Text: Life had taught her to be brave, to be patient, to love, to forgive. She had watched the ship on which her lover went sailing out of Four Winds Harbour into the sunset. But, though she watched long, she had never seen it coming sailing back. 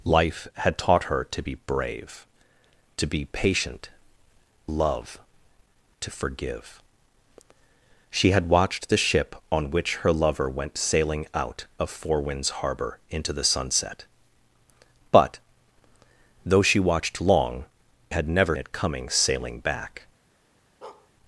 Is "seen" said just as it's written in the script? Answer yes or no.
no